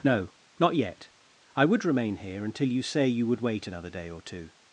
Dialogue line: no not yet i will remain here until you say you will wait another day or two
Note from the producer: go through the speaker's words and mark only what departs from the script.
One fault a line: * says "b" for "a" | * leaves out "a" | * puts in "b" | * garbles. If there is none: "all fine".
* says "would" for "will"
* says "would" for "will"